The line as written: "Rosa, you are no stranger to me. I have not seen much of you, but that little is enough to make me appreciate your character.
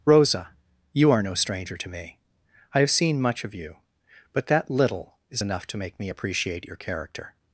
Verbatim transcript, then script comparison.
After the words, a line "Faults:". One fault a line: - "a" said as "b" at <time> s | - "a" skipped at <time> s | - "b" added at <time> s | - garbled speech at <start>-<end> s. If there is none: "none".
"Rosa, you are no stranger to me. I have seen much of you, but that little is enough to make me appreciate your character.
Faults:
- "not" skipped at 2.9 s